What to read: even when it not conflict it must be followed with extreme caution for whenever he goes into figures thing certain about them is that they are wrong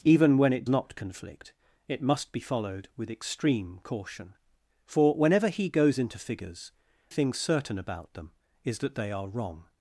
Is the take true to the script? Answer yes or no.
yes